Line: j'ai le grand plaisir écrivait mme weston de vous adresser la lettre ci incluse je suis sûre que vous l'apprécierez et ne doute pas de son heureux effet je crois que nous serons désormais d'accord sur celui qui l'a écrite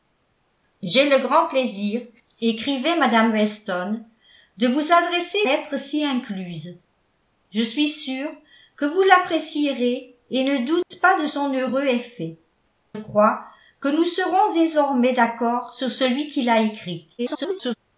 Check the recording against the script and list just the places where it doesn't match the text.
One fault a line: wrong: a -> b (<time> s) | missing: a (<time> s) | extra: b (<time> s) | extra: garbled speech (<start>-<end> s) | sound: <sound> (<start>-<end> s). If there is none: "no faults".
missing: la (5.4 s)
sound: dropout (10.8-10.9 s)
missing: je (12.4 s)
extra: garbled speech (17.2-17.8 s)